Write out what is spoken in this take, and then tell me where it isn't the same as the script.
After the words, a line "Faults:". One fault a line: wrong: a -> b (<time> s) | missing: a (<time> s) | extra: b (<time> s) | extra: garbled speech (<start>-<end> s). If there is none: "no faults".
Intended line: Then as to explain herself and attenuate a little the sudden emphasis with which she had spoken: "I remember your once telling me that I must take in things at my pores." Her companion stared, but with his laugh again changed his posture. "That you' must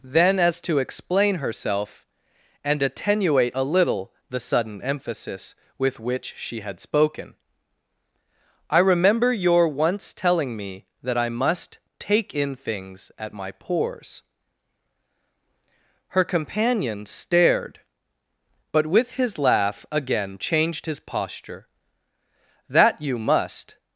Then as to explain herself and attenuate a little the sudden emphasis with which she had spoken: "I remember your once telling me that I must take in things at my pores." Her companion stared, but with his laugh again changed his posture. "That you' must
Faults:
no faults